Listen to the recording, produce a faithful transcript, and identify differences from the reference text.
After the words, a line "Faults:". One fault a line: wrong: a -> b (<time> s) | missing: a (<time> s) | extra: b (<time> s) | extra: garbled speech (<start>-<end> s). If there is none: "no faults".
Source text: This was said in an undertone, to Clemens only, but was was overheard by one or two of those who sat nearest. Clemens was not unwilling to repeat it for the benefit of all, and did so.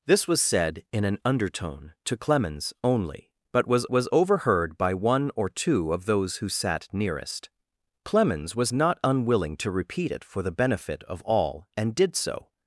This was said in an undertone, to Clemens only, but was was overheard by one or two of those who sat nearest. Clemens was not unwilling to repeat it for the benefit of all, and did so.
Faults:
no faults